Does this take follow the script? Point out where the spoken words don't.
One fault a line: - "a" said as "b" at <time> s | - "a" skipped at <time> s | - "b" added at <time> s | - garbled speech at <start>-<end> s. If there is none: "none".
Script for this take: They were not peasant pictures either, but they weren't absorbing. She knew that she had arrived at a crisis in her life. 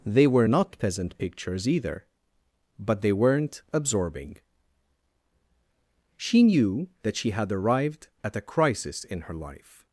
none